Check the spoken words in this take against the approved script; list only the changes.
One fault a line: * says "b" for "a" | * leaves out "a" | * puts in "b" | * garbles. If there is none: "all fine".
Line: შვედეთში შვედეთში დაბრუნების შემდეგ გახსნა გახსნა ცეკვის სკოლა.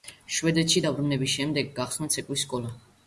* leaves out "შვედეთში"
* leaves out "გახსნა"